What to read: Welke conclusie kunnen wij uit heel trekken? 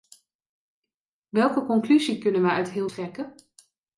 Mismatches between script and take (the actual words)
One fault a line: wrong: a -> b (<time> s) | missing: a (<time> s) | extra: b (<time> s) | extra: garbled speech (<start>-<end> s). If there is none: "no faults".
no faults